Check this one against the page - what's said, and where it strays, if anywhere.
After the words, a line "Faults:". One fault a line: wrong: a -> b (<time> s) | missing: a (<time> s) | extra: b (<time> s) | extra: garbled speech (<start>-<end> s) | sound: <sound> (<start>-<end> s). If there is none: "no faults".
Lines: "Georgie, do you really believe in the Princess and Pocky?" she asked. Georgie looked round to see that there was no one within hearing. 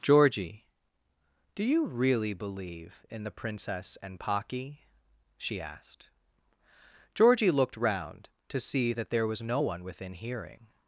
"Georgie, do you really believe in the Princess and Pocky?" she asked. Georgie looked round to see that there was no one within hearing.
Faults:
no faults